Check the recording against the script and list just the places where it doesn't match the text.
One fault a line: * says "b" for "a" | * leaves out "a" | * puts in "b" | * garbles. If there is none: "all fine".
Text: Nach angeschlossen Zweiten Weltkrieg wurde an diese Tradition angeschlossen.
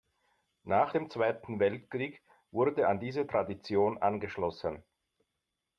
* says "dem" for "angeschlossen"